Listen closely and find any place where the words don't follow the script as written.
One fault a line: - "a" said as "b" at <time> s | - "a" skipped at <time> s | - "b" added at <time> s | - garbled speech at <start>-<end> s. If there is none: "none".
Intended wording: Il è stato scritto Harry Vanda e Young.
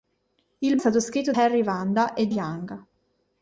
none